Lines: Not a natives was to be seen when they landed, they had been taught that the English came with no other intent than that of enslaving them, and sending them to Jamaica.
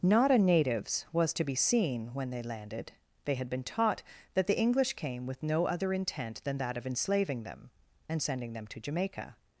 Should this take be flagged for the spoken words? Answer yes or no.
no